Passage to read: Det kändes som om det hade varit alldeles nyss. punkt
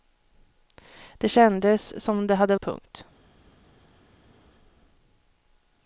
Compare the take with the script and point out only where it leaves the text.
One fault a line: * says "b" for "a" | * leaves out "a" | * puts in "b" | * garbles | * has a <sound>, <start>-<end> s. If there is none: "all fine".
* leaves out "varit alldeles nyss"